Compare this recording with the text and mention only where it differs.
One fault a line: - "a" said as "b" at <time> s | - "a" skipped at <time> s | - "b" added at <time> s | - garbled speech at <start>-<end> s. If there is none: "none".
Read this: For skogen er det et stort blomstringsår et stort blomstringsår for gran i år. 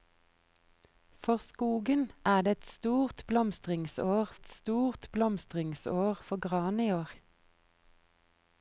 none